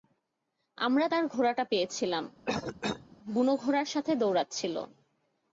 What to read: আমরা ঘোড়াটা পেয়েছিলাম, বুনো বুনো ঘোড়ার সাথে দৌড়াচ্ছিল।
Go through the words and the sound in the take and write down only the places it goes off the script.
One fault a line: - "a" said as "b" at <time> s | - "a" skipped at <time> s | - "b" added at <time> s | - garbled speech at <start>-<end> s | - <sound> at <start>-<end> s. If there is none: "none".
- "তার" added at 1.1 s
- cough at 2.5-3.2 s
- "বুনো" skipped at 3.5 s